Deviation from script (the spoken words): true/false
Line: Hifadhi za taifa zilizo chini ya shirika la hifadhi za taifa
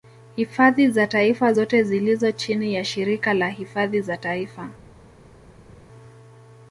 true